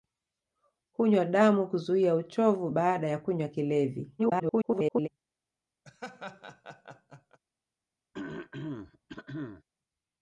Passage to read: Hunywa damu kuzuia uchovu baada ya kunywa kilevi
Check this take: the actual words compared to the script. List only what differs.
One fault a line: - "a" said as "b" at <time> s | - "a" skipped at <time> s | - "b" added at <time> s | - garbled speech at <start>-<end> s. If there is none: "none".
- garbled speech at 4.2-5.1 s